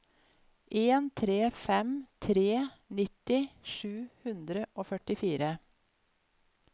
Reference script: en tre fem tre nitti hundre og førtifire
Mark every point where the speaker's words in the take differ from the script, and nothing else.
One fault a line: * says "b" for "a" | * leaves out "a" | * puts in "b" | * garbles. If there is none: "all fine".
* puts in "sju"